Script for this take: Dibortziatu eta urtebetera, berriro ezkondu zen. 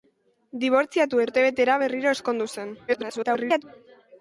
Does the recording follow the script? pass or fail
fail